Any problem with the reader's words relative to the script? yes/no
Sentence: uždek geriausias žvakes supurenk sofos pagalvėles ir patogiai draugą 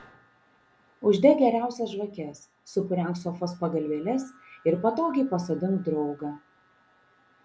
yes